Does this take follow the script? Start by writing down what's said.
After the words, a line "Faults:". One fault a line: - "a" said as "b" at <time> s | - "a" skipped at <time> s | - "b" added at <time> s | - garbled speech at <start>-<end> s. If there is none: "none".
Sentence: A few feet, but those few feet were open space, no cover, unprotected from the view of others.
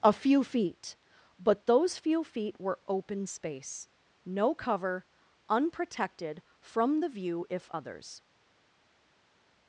A few feet, but those few feet were open space, no cover, unprotected from the view if others.
Faults:
- "of" said as "if" at 7.5 s